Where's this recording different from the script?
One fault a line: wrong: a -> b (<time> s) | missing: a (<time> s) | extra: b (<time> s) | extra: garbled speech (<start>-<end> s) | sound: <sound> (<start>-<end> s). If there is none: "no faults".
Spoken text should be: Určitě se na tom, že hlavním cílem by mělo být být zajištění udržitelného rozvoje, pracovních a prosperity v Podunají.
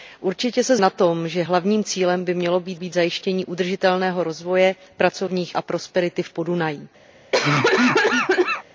sound: cough (7.3-8.6 s)